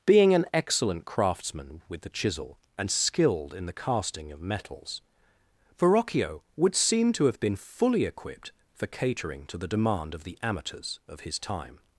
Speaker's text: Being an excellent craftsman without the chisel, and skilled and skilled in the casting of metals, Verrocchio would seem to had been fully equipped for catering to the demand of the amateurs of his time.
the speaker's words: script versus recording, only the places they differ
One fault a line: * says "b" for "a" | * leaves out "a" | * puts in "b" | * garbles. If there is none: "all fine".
* says "with" for "without"
* leaves out "and skilled"
* says "have" for "had"